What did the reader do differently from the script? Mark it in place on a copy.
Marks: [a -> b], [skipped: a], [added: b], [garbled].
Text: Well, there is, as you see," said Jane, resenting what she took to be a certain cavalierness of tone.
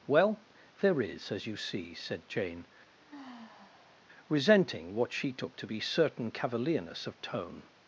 Well, there is, as you see," said Jane, resenting what she took to be [skipped: a] certain cavalierness of tone.